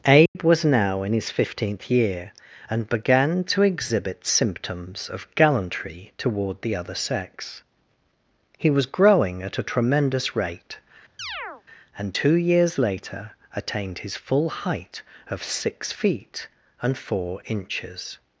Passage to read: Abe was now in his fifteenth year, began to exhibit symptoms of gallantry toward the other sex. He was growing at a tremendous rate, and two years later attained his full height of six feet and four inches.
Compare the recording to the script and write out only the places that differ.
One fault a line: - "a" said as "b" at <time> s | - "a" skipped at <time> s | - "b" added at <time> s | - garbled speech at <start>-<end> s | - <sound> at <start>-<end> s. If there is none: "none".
- dropout at 0.3-0.4 s
- "and" added at 2.7 s
- chirp at 11.2-11.6 s